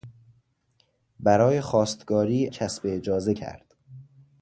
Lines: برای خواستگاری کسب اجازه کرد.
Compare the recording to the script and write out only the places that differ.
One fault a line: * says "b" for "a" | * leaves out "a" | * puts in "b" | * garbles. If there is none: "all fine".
all fine